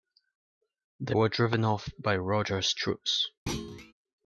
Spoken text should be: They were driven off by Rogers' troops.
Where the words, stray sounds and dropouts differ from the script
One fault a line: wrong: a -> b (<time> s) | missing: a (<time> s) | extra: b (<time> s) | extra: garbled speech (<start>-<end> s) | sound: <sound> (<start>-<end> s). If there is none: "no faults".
sound: thud (3.5-3.9 s)